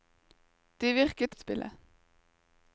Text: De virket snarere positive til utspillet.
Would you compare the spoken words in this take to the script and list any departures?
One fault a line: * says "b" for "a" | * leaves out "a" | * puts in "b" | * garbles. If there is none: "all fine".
* leaves out "snarere positive til"